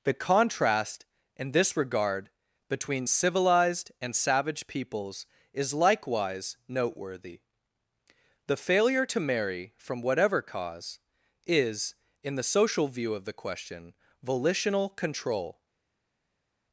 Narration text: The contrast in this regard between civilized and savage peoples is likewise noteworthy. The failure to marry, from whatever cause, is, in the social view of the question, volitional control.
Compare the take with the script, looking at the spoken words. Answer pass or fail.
pass